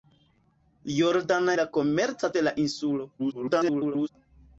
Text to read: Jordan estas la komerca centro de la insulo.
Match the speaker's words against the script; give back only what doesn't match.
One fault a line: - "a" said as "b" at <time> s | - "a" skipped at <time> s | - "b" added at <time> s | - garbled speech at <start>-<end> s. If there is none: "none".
- "estas" skipped at 1.5 s
- "centro" skipped at 2.3 s
- garbled speech at 3.2-4.1 s